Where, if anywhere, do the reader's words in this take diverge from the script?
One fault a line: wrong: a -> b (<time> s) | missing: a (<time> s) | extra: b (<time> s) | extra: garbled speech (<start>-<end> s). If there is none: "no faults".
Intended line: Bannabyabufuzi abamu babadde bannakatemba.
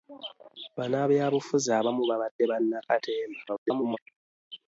extra: garbled speech (3.5-4.0 s)